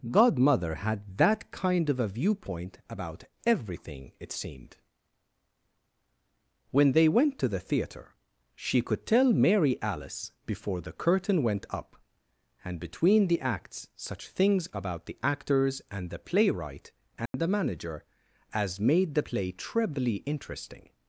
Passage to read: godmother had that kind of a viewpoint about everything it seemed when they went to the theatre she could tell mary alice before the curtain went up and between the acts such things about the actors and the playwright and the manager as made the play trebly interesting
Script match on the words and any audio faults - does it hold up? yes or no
no